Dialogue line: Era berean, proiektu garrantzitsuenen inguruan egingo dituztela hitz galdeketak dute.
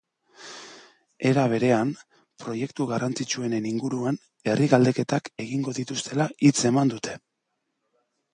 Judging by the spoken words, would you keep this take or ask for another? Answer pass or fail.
fail